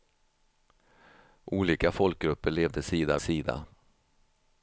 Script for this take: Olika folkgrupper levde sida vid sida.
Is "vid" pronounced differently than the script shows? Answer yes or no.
yes